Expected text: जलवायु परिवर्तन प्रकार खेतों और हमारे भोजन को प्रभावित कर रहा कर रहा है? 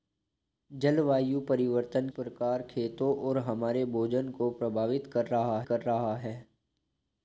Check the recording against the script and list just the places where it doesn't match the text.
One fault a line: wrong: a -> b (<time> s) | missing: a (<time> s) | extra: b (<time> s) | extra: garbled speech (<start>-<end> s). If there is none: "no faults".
no faults